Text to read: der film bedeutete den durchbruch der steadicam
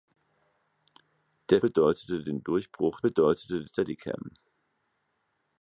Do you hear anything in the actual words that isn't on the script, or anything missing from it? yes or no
yes